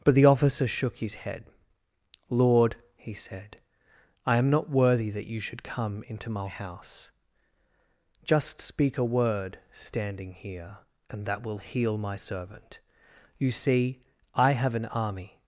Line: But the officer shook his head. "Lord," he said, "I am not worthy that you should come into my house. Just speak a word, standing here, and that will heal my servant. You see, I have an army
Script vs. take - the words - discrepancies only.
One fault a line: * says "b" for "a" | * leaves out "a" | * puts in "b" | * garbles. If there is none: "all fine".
all fine